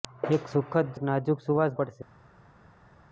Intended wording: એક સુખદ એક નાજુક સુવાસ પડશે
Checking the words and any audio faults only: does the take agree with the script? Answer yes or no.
yes